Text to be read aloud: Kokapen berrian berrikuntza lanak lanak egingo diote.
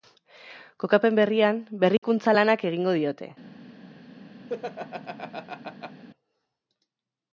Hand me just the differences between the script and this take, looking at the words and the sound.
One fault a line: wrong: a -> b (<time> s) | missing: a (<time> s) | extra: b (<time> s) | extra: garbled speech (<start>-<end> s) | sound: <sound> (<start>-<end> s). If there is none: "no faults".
sound: dropout (2.0-2.0 s)
missing: lanak (2.6 s)
sound: laugh (4.5-6.0 s)